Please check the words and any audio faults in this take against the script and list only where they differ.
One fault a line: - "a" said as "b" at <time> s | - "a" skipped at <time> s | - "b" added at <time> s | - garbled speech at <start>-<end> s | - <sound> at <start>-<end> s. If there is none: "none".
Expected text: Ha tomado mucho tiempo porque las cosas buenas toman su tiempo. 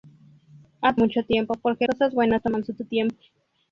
- "tomado" skipped at 1.0 s
- "las" skipped at 1.9 s
- "su" added at 2.7 s